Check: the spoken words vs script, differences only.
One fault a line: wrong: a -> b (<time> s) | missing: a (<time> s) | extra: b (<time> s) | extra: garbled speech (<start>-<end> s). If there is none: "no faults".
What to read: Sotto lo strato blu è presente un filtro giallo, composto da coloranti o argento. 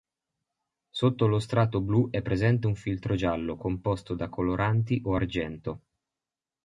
no faults